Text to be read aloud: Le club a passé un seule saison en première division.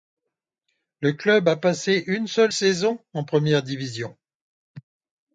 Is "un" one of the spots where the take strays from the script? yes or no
yes